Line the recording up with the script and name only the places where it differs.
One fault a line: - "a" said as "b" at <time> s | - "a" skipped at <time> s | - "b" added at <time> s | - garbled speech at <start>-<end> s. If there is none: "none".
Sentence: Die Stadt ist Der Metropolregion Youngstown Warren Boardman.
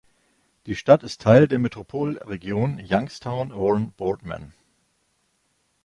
- "Teil" added at 1.2 s